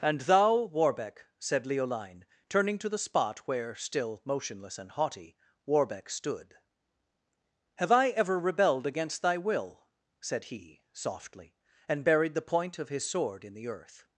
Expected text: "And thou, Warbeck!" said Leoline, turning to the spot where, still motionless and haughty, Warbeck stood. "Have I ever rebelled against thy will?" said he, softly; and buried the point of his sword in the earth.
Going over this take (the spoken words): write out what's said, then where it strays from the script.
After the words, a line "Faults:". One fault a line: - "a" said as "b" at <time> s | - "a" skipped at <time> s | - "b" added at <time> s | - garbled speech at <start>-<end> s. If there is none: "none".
"And thou, Warbeck!" said Leoline, turning to the spot where, still motionless and haughty, Warbeck stood. "Have I ever rebelled against thy will?" said he, softly; and buried the point of his sword in the earth.
Faults:
none